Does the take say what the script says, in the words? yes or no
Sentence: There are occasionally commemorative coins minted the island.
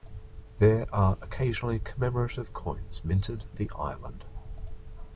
yes